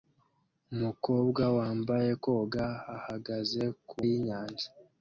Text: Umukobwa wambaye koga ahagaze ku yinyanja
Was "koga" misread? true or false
false